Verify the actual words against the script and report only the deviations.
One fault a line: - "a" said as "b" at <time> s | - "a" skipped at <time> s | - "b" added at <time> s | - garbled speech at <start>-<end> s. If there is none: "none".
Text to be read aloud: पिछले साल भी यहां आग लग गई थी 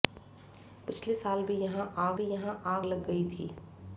- "भी यहां आग" added at 2.1 s